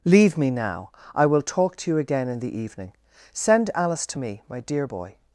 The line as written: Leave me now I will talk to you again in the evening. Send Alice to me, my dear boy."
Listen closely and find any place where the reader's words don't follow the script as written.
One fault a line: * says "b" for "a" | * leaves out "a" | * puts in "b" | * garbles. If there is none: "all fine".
all fine